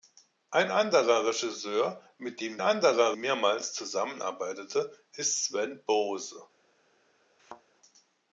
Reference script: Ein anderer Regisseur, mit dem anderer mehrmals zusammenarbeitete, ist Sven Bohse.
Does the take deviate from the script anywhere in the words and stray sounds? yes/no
yes